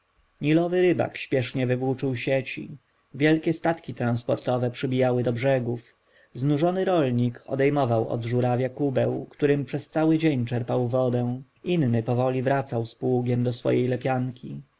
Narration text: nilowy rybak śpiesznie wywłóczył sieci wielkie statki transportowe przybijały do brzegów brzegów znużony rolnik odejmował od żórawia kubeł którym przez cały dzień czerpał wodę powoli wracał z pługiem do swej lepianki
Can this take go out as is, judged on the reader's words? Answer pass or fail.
fail